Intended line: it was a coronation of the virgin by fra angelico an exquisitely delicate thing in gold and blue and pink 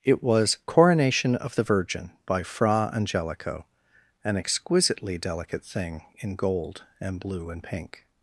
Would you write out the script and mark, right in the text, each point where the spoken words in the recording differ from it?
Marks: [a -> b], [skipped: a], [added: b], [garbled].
it was [skipped: a] coronation of the virgin by fra angelico an exquisitely delicate thing in gold and blue and pink